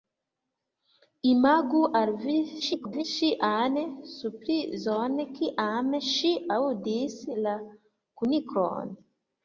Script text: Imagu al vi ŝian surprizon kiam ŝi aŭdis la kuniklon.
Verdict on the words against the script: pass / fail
fail